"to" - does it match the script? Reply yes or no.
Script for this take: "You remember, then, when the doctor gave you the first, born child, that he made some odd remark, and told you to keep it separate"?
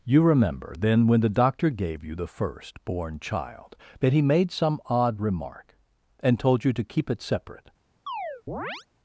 yes